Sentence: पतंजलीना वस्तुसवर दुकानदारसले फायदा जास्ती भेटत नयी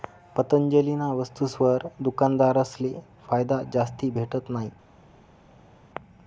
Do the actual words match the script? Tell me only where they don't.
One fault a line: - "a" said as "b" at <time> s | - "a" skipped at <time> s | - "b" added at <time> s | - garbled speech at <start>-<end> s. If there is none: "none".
none